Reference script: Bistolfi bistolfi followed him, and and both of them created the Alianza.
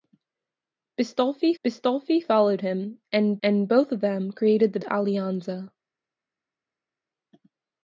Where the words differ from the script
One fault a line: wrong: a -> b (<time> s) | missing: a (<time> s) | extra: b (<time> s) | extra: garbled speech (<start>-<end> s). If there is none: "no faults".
no faults